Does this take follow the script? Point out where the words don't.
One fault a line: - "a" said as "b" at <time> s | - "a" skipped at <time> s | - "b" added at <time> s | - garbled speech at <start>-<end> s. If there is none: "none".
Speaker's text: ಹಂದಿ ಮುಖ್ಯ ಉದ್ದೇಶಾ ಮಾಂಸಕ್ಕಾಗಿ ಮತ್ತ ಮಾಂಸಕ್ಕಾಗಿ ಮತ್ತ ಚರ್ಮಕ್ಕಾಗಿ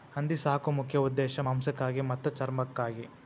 - "ಸಾಕು" added at 0.4 s
- "ಮಾಂಸಕ್ಕಾಗಿ ಮತ್ತ" skipped at 2.3 s